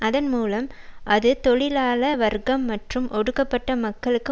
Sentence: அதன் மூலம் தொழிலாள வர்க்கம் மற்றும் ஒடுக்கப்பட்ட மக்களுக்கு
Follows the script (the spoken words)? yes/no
no